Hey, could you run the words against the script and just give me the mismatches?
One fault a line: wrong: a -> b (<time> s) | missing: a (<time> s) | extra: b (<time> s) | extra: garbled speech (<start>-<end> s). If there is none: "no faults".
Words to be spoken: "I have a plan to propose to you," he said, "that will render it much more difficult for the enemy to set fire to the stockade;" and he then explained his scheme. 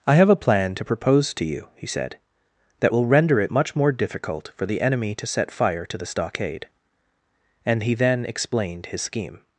no faults